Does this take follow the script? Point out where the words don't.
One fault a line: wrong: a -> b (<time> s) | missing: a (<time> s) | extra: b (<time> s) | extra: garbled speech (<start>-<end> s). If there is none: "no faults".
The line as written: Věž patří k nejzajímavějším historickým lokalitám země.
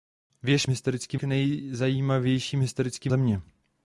wrong: patří -> historickým (0.7 s)
missing: lokalitám (3.1 s)